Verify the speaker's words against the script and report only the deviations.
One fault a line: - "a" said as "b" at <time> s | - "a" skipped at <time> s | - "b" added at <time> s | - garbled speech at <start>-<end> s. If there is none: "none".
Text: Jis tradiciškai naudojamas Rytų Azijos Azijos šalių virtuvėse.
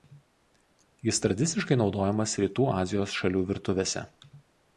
- "Azijos" skipped at 3.1 s